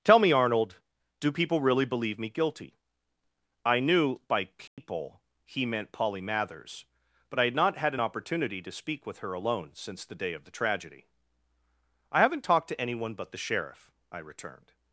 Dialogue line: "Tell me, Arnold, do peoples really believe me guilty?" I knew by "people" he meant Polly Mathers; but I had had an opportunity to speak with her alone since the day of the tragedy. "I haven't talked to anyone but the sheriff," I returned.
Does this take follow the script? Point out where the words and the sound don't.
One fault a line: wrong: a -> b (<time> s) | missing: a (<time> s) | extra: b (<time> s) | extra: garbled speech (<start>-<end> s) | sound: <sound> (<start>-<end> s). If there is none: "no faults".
wrong: peoples -> people (1.3 s)
sound: dropout (4.7-4.8 s)
extra: not (7.5 s)